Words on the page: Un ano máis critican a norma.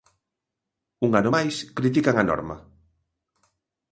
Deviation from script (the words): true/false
false